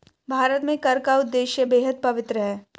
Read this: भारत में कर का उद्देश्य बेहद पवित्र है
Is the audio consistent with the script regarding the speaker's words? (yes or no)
yes